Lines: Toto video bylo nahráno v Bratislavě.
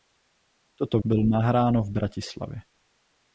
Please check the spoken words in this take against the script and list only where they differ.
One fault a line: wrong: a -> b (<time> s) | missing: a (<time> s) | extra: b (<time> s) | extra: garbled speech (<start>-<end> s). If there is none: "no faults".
missing: video (1.0 s)